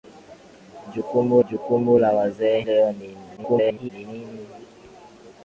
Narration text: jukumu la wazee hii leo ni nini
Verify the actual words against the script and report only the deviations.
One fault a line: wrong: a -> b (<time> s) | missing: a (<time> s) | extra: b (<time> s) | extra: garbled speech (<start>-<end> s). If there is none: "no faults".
extra: jukumu (1.5 s)
missing: hii (2.6 s)
extra: garbled speech (3.4-3.9 s)